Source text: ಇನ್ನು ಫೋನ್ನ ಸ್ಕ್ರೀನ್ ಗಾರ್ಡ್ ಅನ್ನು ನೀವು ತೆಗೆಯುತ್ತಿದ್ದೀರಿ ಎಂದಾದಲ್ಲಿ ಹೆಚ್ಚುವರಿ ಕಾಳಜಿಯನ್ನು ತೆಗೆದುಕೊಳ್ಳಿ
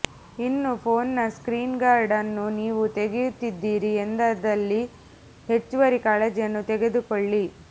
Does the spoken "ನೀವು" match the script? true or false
true